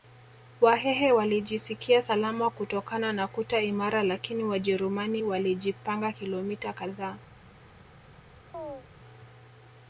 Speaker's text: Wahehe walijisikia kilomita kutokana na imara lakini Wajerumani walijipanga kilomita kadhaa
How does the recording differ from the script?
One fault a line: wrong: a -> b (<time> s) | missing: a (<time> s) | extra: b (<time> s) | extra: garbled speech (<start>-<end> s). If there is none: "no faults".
wrong: kilomita -> salama (2.0 s)
extra: kuta (3.3 s)